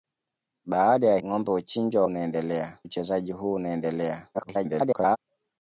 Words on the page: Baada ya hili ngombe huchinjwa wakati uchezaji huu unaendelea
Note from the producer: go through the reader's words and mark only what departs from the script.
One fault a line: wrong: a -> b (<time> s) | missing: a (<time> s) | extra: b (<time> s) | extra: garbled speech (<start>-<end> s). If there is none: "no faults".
missing: hili (1.2 s)
wrong: wakati -> unaendelea (2.0 s)
extra: garbled speech (4.3-5.2 s)